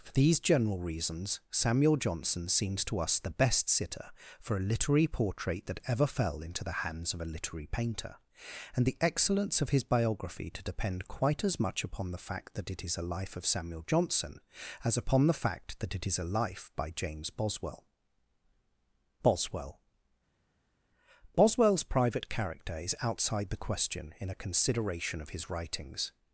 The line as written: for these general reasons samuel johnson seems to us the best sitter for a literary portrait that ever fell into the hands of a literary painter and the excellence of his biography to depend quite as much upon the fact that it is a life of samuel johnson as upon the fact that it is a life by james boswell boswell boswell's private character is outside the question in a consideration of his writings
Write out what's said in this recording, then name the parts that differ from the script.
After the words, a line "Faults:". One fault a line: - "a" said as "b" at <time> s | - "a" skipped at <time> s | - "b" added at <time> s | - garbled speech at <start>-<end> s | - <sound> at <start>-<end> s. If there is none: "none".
for these general reasons samuel johnson seems to us the best sitter for a literary portrait that ever fell into the hands of a literary painter and the excellence of his biography to depend quite as much upon the fact that it is a life of samuel johnson as upon the fact that it is a life by james boswell boswell boswell's private character is outside the question in a consideration of his writings
Faults:
none